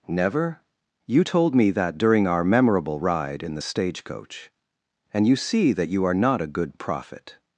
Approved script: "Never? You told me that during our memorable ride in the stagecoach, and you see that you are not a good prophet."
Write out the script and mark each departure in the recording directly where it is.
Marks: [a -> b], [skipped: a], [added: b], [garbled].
"Never? You told me that during our memorable ride in the stagecoach, and you see that you are not a good prophet."